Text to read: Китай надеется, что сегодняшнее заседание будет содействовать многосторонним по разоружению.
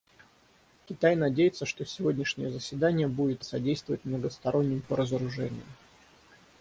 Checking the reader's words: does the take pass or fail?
pass